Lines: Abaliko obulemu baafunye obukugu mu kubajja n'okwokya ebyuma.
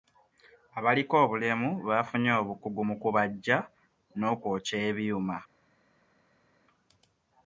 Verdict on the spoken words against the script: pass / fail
pass